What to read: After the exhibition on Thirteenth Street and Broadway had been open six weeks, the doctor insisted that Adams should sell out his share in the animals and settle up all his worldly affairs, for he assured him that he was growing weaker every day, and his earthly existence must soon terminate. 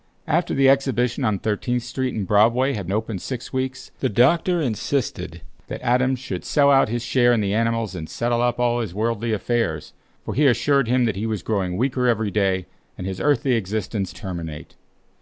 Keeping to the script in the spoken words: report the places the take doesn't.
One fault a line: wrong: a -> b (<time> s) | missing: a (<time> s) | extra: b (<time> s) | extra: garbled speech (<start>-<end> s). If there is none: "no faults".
missing: been (2.9 s)
missing: must soon (14.2 s)